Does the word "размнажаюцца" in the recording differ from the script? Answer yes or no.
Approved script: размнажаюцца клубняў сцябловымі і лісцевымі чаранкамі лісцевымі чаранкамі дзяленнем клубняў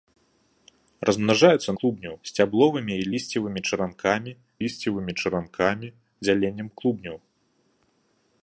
no